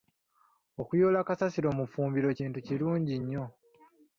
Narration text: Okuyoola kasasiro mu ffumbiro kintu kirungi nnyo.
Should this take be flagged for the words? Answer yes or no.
no